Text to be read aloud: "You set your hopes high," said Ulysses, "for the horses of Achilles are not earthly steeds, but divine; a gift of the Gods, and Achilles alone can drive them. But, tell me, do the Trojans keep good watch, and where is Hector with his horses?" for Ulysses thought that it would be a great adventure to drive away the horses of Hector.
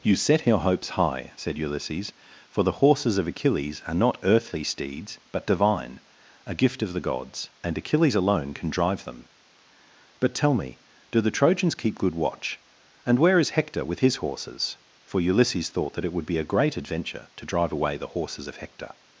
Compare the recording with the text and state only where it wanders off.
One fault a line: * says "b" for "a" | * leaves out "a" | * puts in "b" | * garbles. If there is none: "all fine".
all fine